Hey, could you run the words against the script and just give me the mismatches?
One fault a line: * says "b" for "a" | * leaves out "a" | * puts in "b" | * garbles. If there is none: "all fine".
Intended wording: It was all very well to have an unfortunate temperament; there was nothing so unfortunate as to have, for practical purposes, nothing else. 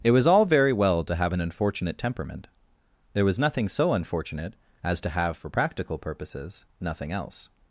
all fine